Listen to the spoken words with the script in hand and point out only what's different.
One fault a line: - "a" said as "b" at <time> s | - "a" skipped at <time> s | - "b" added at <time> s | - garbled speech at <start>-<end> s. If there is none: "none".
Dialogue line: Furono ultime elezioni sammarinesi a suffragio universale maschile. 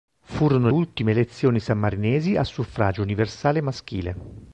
none